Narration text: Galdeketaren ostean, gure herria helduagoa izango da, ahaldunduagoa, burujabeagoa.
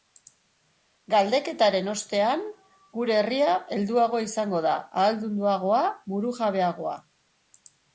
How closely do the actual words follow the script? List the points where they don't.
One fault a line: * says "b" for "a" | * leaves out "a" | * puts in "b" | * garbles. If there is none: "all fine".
all fine